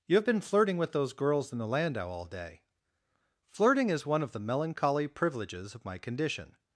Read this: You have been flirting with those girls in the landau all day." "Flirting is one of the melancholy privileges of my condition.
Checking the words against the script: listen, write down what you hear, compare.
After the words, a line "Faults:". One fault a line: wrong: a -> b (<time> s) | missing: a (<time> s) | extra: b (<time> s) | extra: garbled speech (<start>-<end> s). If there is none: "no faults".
You have been flirting with those girls in the landau all day." "Flirting is one of the melancholy privileges of my condition.
Faults:
no faults